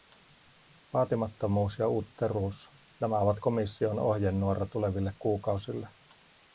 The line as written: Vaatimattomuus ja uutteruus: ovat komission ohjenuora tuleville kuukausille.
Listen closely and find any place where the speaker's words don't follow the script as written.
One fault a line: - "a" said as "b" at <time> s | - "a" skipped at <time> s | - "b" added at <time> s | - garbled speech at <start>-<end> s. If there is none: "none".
- "nämä" added at 3.0 s